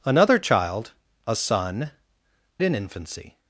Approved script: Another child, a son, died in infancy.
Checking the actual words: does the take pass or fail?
fail